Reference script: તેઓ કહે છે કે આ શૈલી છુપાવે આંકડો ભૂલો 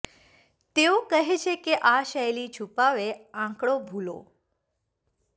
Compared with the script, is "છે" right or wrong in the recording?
right